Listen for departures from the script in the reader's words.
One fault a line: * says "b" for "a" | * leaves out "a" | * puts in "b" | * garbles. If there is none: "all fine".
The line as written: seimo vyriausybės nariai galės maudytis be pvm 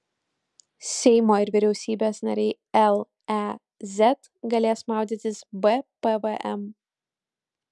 * puts in "ir"
* puts in "lez"